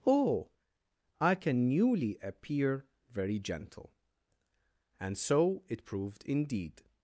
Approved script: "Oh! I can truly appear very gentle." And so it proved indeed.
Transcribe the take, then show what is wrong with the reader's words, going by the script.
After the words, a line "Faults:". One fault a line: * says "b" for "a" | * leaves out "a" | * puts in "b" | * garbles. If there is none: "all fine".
"Oh! I can newly appear very gentle." And so it proved indeed.
Faults:
* says "newly" for "truly"